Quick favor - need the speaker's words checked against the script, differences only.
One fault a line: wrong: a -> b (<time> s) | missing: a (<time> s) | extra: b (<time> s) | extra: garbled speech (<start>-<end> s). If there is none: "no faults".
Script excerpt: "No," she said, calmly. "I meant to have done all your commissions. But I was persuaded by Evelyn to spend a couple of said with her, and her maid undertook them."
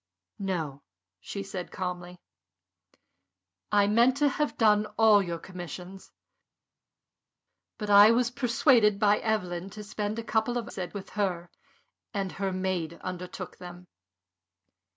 no faults